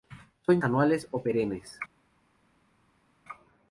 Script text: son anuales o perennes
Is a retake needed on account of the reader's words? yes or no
no